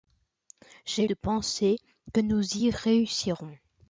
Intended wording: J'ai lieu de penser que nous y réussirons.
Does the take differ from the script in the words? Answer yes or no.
yes